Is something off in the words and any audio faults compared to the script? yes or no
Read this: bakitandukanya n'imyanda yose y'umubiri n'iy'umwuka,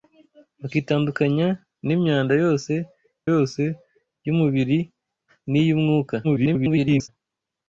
yes